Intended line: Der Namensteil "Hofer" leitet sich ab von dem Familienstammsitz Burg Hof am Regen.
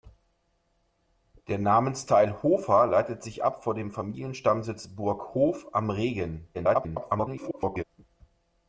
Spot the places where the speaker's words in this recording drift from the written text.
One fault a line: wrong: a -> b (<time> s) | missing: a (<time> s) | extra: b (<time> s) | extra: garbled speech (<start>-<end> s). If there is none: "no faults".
extra: garbled speech (6.5-7.8 s)